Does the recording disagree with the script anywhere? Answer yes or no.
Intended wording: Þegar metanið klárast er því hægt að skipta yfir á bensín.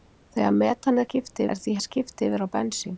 yes